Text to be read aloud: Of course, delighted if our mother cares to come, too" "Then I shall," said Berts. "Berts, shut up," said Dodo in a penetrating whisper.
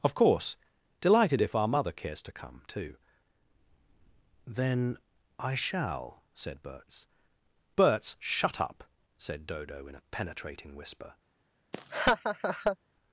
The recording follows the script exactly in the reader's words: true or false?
true